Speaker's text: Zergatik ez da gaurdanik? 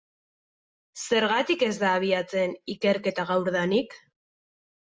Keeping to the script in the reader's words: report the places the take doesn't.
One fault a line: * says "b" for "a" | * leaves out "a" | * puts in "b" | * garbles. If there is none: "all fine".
* puts in "abiatzen ikerketa"